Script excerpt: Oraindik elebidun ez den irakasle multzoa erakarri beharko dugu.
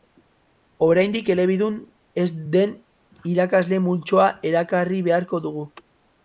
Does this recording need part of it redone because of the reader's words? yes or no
no